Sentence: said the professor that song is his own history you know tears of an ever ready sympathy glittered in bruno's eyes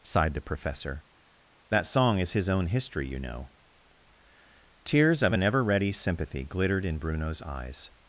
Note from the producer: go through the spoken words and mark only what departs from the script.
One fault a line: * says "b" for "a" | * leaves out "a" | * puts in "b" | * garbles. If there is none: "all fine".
* says "sighed" for "said"